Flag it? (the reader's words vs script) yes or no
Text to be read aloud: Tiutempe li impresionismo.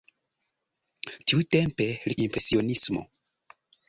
no